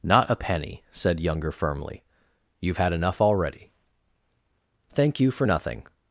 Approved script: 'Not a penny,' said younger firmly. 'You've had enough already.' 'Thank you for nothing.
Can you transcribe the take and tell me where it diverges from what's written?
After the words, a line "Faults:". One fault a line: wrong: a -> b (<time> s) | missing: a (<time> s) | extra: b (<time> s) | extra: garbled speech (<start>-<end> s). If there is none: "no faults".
'Not a penny,' said younger firmly. 'You've had enough already.' 'Thank you for nothing.
Faults:
no faults